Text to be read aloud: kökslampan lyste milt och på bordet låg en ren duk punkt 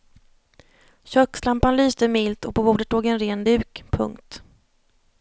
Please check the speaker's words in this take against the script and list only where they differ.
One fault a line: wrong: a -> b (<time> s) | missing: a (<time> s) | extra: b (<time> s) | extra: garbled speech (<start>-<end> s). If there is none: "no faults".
no faults